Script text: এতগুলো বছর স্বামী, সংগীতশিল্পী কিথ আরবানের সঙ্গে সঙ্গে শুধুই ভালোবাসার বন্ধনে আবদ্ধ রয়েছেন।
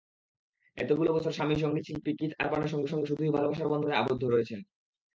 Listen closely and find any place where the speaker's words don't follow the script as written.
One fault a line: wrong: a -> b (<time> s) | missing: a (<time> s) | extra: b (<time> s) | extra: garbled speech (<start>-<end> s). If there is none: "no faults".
no faults